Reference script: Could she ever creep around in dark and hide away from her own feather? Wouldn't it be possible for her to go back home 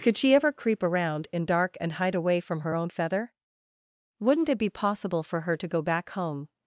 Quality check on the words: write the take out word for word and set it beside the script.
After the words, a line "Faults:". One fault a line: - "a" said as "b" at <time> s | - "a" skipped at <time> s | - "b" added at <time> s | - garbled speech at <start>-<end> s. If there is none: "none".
Could she ever creep around in dark and hide away from her own feather? Wouldn't it be possible for her to go back home
Faults:
none